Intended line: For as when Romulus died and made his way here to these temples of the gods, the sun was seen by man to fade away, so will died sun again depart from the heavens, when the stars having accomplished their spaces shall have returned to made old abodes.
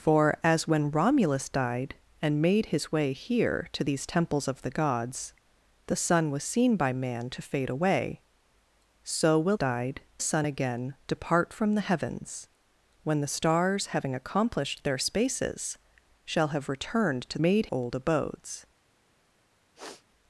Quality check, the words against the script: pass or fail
pass